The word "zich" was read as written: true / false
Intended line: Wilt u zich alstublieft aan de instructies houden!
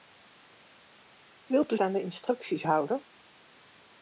false